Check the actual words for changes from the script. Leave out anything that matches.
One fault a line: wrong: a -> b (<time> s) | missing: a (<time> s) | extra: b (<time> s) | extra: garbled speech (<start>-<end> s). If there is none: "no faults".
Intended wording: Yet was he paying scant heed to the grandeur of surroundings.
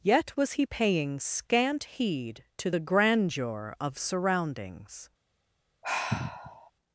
no faults